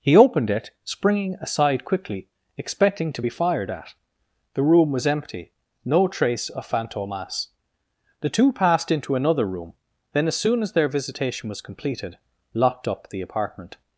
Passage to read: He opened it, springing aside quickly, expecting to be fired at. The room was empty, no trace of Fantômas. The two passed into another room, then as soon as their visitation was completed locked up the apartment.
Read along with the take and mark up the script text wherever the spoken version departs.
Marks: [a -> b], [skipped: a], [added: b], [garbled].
He opened it, springing aside quickly, expecting to be fired at. The room was empty, no trace of Fantômas. The two passed into another room, then as soon as their visitation was completed locked up the apartment.